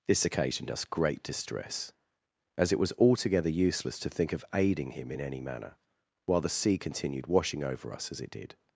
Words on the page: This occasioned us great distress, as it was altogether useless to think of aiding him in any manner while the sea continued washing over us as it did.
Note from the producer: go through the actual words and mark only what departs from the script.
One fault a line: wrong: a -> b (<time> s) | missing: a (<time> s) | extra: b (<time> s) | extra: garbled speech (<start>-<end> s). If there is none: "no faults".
no faults